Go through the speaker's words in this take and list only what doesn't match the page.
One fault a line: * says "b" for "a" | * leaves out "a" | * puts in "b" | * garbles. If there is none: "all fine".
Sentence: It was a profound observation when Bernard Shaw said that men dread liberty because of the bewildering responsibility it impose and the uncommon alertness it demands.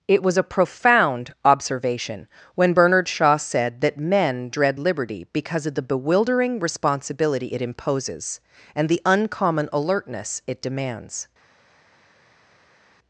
* says "imposes" for "impose"